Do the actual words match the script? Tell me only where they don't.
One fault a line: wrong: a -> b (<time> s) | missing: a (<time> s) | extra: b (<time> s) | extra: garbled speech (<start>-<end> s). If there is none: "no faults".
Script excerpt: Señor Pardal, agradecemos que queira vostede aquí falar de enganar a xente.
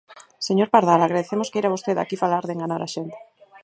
missing: que (1.5 s)